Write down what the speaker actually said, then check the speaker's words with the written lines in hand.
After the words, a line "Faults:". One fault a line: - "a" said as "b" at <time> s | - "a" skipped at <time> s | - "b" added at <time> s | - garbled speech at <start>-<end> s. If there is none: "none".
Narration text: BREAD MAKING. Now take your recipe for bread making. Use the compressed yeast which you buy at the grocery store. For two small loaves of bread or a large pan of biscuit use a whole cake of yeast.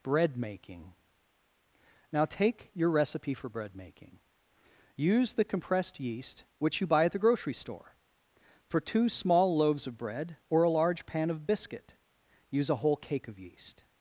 BREAD MAKING. Now take your recipe for bread making. Use the compressed yeast which you buy at the grocery store. For two small loaves of bread or a large pan of biscuit use a whole cake of yeast.
Faults:
none